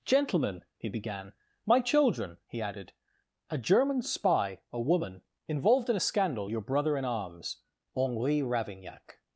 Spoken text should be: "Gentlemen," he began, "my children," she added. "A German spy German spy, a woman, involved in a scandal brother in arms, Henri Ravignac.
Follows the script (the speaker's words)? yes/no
no